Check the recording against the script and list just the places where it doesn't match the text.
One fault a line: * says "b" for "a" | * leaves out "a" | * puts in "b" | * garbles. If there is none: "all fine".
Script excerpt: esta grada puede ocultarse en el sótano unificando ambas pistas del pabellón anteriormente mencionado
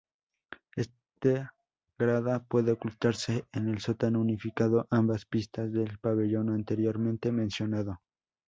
all fine